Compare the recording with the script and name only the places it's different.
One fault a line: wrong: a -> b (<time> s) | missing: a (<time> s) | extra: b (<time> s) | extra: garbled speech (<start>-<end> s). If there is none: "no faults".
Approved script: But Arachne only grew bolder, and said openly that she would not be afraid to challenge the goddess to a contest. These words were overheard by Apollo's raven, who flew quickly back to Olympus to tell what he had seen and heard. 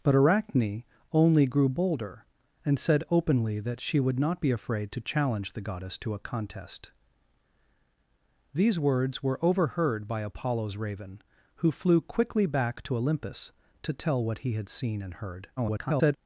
extra: garbled speech (15.6-16.2 s)